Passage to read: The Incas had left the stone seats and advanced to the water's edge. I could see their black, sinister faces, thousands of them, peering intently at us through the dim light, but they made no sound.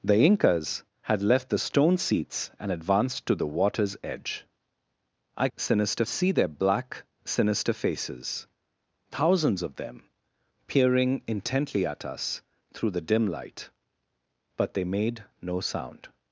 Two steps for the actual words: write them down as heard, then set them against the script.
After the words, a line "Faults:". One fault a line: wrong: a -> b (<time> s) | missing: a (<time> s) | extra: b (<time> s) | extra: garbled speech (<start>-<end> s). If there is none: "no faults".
The Incas had left the stone seats and advanced to the water's edge. I sinister see their black, sinister faces, thousands of them, peering intently at us through the dim light, but they made no sound.
Faults:
wrong: could -> sinister (5.5 s)